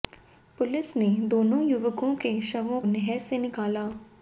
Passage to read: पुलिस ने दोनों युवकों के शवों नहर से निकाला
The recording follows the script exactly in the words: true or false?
true